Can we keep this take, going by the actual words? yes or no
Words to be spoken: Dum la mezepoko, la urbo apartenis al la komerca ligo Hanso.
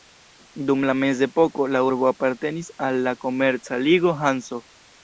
yes